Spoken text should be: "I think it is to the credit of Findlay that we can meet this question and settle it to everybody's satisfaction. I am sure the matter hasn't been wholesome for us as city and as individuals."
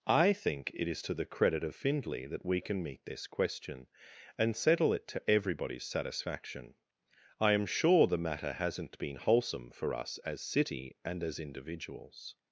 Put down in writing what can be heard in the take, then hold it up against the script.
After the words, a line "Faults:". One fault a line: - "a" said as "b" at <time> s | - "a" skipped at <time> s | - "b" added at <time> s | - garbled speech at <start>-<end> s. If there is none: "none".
"I think it is to the credit of Findlay that we can meet this question and settle it to everybody's satisfaction. I am sure the matter hasn't been wholesome for us as city and as individuals."
Faults:
none